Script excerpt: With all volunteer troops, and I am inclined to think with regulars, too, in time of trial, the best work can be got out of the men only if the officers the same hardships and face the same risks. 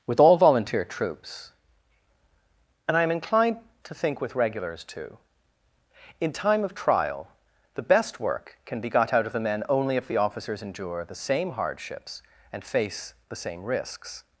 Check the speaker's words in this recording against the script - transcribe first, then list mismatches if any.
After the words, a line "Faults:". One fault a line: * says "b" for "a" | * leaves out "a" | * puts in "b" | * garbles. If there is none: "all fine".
With all volunteer troops, and I am inclined to think with regulars, too, in time of trial, the best work can be got out of the men only if the officers endure the same hardships and face the same risks.
Faults:
* puts in "endure"